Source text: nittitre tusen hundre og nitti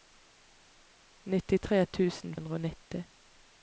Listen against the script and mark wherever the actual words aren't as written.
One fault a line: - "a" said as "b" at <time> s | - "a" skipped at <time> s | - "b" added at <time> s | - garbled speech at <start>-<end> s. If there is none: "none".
none